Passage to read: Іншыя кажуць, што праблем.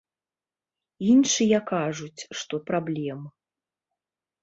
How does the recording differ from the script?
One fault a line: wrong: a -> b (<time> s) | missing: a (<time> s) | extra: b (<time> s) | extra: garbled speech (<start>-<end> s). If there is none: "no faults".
no faults